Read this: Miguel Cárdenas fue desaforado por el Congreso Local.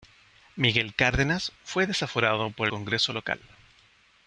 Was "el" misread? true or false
true